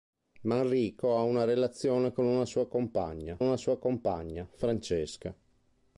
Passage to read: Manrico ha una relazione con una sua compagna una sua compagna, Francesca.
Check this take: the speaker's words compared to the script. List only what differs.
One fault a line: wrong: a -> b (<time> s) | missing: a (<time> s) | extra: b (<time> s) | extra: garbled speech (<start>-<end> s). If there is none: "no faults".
no faults